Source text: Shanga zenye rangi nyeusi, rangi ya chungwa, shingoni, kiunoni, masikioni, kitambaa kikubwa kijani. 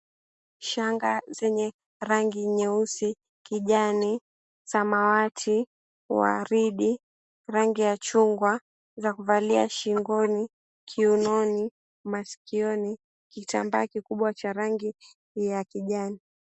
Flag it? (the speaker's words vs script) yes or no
yes